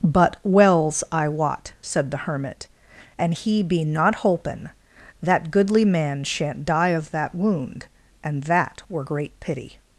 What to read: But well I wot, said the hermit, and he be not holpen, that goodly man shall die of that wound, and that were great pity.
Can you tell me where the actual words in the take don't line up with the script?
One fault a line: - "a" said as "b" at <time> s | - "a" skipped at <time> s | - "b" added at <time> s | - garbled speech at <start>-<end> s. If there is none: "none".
- "well" said as "wells" at 0.4 s
- "shall" said as "shan't" at 6.2 s